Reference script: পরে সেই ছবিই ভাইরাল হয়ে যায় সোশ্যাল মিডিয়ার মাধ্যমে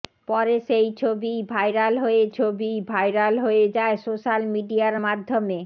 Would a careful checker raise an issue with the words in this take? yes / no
yes